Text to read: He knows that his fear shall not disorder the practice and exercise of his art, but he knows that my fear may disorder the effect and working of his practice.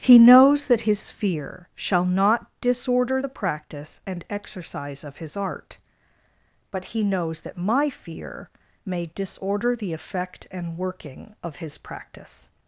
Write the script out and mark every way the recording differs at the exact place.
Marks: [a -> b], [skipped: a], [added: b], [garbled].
He knows that his fear shall not disorder the practice and exercise of his art, but he knows that my fear may disorder the effect and working of his practice.